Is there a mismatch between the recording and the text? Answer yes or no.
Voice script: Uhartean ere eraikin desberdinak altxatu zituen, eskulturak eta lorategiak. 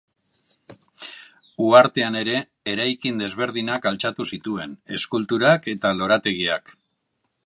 no